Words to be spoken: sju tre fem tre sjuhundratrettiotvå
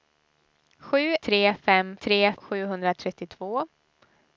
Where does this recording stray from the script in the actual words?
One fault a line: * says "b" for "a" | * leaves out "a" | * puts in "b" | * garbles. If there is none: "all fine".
all fine